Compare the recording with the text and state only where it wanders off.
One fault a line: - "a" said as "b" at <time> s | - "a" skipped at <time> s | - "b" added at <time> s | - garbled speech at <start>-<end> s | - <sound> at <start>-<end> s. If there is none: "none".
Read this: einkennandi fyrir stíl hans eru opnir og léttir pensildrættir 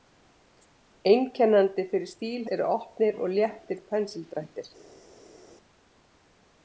- "hans" skipped at 2.5 s